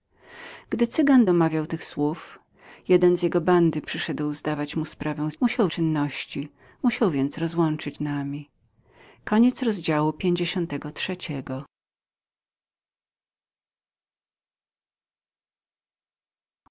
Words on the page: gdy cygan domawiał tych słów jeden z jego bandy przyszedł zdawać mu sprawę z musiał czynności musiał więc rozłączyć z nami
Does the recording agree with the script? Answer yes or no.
yes